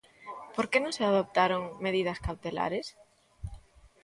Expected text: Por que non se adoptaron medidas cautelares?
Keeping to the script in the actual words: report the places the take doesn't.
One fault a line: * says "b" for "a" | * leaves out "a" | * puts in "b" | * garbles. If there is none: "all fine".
all fine